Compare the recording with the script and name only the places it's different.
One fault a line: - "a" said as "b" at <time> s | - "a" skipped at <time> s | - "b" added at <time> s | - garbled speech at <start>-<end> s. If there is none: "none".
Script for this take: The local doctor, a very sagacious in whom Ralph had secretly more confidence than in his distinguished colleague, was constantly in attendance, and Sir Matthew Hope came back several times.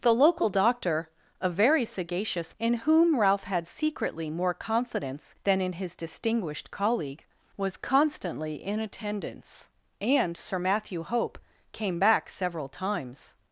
none